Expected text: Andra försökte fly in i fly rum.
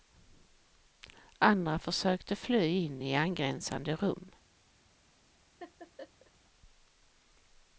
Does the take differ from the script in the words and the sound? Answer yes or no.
yes